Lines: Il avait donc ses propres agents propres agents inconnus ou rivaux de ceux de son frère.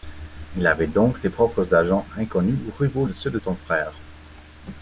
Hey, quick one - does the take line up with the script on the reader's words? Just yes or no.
no